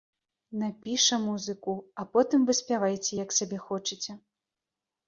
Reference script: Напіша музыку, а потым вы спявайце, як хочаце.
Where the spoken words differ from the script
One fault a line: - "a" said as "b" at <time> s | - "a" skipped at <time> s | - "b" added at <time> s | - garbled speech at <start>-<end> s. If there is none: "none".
- "сабе" added at 3.4 s